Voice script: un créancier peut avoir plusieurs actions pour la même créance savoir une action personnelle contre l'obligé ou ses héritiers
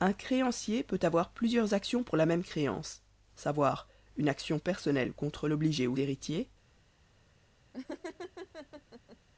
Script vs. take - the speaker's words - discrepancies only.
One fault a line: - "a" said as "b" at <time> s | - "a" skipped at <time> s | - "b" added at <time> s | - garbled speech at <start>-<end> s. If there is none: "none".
- "ses" skipped at 6.0 s